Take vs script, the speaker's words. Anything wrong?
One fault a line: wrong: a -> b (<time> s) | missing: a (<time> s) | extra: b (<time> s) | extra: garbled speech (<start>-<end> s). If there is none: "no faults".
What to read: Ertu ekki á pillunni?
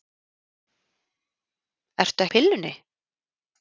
missing: ekki (2.2 s)